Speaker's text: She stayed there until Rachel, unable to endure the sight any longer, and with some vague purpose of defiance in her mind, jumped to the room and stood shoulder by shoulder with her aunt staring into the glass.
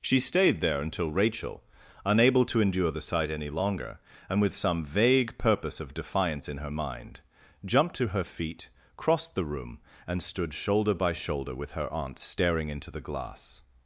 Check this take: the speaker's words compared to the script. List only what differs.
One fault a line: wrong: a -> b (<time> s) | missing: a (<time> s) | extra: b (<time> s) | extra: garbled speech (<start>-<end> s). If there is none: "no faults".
extra: her feet crossed (8.1 s)